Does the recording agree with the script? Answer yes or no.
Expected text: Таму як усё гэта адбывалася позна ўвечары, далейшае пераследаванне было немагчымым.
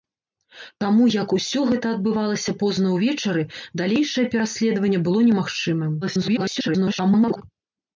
no